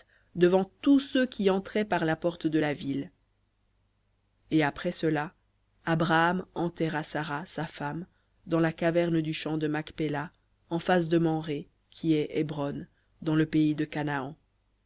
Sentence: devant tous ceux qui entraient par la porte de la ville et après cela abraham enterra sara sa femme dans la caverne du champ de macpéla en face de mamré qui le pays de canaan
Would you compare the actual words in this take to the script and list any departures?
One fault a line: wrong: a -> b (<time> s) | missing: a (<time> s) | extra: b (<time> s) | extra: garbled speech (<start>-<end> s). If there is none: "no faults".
extra: est hébron dans (12.1 s)